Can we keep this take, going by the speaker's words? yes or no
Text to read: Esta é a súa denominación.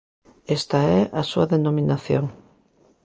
yes